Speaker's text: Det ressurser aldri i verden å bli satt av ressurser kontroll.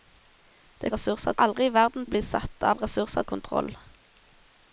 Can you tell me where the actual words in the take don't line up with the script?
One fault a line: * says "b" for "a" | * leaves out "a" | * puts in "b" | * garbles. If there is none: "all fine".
all fine